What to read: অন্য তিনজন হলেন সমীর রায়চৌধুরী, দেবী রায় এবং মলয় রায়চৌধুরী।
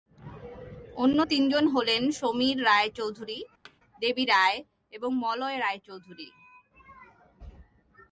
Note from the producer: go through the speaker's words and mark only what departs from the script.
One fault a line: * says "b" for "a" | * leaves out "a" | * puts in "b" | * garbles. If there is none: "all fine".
all fine